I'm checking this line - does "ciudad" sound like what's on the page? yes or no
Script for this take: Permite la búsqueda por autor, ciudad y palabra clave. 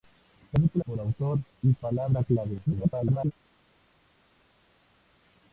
no